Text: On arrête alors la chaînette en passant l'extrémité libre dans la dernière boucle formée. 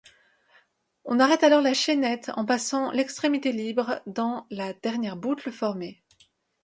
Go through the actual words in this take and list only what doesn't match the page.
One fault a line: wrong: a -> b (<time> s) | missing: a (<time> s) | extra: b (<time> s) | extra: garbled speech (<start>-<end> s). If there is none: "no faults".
no faults